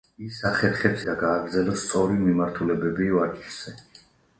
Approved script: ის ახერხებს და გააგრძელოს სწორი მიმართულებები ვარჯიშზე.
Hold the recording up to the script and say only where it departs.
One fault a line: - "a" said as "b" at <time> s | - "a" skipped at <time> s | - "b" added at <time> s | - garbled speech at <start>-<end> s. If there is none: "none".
none